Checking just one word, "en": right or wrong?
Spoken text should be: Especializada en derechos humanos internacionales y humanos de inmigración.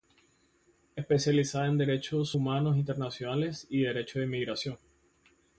right